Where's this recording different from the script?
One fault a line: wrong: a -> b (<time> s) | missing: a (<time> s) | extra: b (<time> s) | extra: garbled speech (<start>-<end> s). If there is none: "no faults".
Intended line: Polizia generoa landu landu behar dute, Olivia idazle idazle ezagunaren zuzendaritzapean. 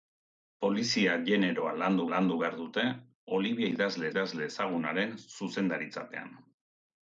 no faults